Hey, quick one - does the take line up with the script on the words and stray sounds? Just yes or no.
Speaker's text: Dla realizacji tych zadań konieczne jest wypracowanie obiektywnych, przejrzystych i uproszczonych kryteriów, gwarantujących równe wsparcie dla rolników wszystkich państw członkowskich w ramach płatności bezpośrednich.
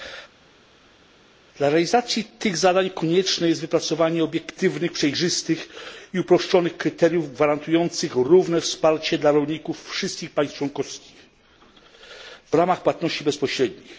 yes